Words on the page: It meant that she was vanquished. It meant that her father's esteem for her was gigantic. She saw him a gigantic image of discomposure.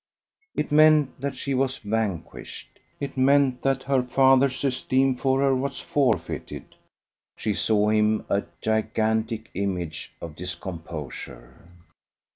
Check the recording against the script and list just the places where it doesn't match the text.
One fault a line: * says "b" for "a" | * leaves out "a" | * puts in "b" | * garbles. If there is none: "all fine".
* says "forfeited" for "gigantic"